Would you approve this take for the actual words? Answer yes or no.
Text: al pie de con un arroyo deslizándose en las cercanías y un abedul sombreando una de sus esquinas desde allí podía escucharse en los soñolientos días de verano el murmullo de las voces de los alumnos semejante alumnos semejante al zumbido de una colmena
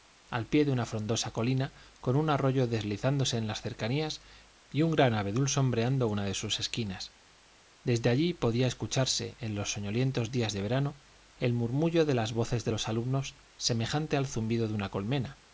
no